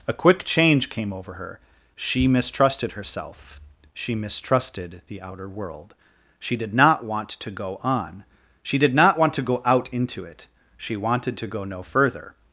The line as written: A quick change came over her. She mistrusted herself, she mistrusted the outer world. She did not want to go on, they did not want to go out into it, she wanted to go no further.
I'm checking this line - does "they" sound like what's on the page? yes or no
no